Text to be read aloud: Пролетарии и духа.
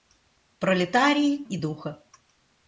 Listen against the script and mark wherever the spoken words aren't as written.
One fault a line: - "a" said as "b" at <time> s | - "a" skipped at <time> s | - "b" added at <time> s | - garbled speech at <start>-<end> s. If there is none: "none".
none